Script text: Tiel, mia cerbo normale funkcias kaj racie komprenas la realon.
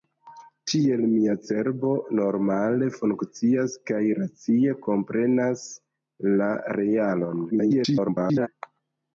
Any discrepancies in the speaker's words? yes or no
yes